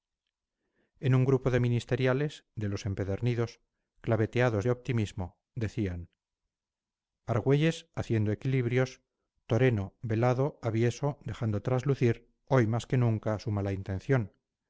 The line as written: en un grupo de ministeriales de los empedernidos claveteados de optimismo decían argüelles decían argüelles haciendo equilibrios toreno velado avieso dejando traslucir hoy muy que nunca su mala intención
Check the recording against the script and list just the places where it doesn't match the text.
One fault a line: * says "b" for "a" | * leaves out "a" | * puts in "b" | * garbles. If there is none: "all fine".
* leaves out "decían argüelles"
* says "más" for "muy"